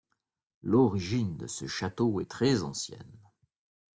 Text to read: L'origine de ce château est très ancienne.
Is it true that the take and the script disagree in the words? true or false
false